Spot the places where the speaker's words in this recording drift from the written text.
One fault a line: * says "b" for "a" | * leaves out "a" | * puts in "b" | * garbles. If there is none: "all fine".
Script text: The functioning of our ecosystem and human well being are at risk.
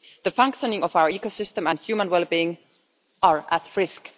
all fine